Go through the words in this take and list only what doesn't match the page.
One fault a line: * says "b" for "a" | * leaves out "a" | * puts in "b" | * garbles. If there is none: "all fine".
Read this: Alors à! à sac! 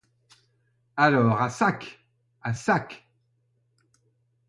* puts in "sac"